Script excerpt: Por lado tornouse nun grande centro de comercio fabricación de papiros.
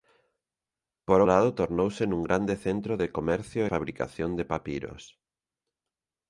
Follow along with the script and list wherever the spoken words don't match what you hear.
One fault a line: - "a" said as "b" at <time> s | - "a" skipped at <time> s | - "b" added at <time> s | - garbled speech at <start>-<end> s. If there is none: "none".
none